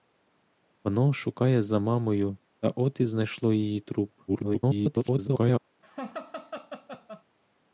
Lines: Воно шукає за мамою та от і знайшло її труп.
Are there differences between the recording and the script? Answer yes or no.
yes